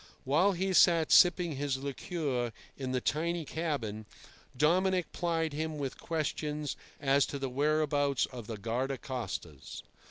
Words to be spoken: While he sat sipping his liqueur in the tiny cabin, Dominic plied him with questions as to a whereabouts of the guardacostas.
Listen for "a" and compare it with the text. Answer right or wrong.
wrong